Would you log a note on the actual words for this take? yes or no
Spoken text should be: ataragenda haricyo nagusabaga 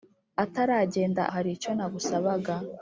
no